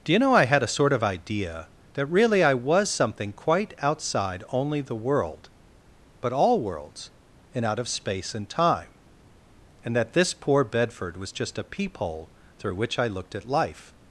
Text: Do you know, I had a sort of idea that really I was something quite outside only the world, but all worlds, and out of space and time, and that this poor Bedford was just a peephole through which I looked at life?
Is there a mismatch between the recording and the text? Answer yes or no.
no